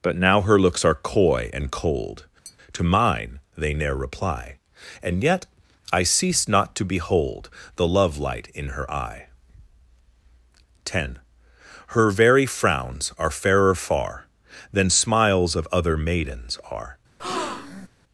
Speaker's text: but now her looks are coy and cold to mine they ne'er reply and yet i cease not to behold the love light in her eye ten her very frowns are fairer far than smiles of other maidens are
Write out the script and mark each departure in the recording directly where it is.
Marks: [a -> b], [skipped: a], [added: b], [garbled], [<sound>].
but now her looks are coy and cold [tap] to mine they ne'er reply and yet i cease not to behold the love light in her eye ten her very frowns are fairer far than smiles of other maidens are [breath]